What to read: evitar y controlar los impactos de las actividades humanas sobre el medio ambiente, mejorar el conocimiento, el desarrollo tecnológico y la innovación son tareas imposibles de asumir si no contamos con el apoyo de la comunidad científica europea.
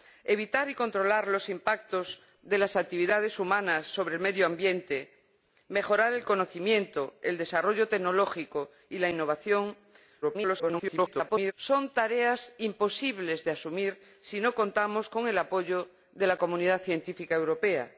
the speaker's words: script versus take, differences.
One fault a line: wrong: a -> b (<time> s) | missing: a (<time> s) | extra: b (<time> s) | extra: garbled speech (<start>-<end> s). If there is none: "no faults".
extra: garbled speech (10.2-11.5 s)